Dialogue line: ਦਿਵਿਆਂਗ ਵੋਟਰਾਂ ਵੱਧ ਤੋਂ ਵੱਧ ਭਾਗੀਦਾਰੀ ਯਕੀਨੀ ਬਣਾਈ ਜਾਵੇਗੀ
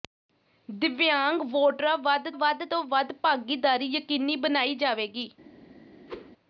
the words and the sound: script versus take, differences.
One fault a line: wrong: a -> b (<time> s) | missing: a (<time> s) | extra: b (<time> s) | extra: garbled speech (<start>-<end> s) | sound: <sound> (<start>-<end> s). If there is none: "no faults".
extra: ਵੱਧ (2.4 s)
sound: whoosh (6.1-6.3 s)